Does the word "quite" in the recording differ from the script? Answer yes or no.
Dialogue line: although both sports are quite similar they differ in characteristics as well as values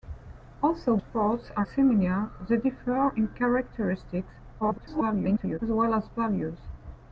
yes